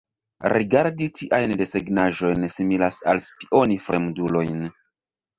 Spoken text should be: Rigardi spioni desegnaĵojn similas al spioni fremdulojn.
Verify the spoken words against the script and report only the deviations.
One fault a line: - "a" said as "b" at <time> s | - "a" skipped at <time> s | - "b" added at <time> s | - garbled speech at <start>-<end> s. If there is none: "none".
- "spioni" said as "tiajn" at 1.2 s